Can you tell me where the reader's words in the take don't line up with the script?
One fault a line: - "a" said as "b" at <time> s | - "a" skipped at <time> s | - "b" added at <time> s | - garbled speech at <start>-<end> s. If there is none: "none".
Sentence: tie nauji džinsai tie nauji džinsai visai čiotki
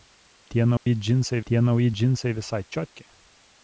none